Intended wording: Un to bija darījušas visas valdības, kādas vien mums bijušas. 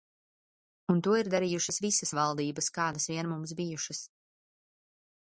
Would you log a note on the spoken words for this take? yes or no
yes